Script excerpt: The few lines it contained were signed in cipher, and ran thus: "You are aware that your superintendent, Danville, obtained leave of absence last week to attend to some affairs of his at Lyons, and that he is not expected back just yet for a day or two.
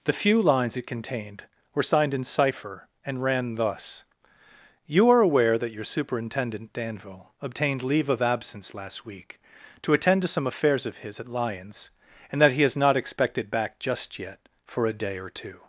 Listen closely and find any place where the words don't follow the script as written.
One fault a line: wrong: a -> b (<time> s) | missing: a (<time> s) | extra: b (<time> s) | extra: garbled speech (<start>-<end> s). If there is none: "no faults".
no faults